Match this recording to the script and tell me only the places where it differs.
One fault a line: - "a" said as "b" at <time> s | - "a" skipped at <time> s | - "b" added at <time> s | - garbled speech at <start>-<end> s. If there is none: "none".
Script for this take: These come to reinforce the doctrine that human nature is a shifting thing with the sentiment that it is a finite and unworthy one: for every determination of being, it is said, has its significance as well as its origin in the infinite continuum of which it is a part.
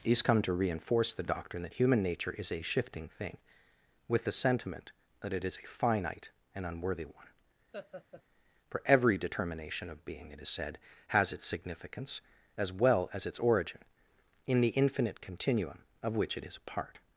none